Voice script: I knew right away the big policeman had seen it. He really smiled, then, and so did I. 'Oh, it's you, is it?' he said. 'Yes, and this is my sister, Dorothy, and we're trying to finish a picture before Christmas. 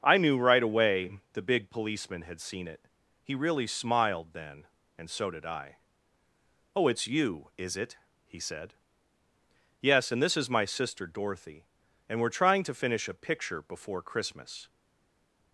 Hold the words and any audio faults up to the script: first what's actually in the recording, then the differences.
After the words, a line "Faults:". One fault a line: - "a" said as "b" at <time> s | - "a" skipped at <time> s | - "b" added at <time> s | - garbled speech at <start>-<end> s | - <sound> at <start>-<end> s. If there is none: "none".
I knew right away the big policeman had seen it. He really smiled, then, and so did I. 'Oh, it's you, is it?' he said. 'Yes, and this is my sister, Dorothy, and we're trying to finish a picture before Christmas.
Faults:
none